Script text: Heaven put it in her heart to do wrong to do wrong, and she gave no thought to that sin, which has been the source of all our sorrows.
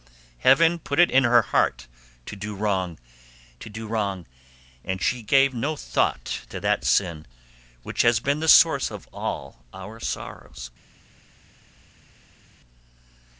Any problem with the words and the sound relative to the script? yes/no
no